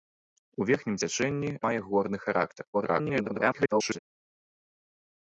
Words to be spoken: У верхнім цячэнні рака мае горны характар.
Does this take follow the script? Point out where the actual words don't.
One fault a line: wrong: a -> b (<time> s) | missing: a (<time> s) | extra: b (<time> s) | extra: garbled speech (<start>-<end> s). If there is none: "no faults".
missing: рака (1.5 s)
extra: garbled speech (2.7-4.0 s)